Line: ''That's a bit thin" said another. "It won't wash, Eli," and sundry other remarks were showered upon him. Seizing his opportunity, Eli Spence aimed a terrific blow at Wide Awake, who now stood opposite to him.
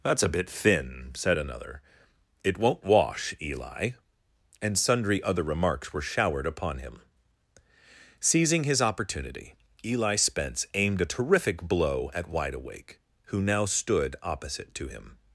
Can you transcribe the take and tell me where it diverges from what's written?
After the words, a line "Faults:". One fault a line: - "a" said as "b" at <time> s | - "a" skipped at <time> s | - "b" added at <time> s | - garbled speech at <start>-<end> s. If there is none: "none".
''That's a bit thin" said another. "It won't wash, Eli," and sundry other remarks were showered upon him. Seizing his opportunity, Eli Spence aimed a terrific blow at Wide Awake, who now stood opposite to him.
Faults:
none